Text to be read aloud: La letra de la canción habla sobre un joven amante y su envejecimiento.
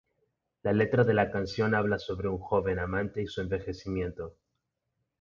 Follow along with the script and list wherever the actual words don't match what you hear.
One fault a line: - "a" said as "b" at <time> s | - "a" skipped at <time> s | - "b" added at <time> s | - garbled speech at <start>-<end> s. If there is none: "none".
none